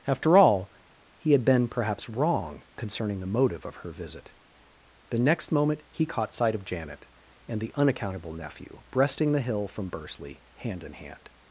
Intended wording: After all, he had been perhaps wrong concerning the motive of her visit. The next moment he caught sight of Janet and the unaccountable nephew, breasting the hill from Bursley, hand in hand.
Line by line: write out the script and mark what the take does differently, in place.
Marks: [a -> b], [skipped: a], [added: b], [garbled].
After all, he had been perhaps wrong concerning the motive of her visit. The next moment he caught sight of Janet and the unaccountable nephew, breasting the hill from Bursley, hand in hand.